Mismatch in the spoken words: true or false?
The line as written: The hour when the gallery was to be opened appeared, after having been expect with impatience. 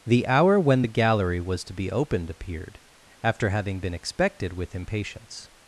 true